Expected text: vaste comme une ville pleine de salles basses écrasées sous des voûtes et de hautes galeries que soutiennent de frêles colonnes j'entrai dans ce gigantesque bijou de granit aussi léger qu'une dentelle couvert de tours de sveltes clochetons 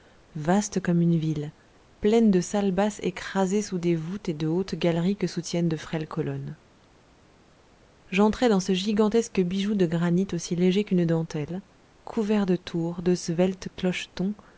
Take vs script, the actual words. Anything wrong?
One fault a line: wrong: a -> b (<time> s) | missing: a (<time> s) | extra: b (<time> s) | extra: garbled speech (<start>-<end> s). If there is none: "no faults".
no faults